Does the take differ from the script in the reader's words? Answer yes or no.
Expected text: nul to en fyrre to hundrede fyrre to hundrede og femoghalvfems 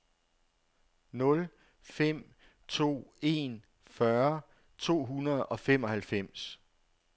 yes